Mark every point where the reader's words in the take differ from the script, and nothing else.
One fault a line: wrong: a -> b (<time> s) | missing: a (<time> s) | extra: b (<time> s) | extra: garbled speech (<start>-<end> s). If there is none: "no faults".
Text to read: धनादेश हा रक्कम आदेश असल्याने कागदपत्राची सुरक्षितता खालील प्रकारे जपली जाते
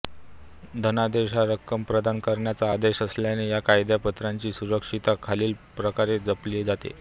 extra: प्रदान करण्याचा (1.8 s)
extra: या (3.5 s)